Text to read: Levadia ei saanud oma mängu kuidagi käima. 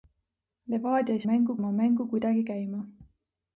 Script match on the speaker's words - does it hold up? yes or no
no